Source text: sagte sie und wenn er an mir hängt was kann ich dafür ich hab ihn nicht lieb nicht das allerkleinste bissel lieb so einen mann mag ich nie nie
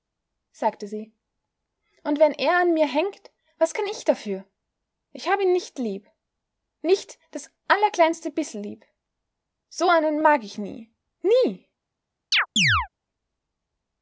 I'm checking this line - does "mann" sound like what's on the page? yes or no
no